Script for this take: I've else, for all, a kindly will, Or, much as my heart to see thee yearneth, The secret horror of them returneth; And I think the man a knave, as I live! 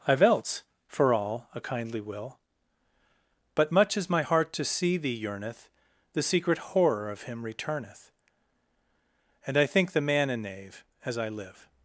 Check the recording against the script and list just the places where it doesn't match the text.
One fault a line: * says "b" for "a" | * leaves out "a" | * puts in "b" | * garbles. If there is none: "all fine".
* says "But" for "Or"
* says "him" for "them"